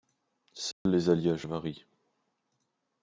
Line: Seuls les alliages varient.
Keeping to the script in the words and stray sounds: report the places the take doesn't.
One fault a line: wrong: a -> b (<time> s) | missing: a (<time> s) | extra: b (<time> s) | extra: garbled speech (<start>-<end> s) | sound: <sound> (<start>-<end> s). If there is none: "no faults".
sound: dropout (0.7-0.9 s)